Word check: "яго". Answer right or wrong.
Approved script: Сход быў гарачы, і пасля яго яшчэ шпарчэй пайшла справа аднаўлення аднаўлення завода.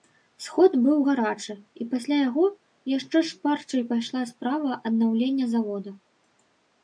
right